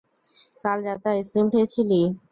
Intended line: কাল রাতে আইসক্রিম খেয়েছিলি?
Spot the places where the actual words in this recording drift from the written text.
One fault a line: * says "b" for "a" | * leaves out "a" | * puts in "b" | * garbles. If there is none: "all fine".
all fine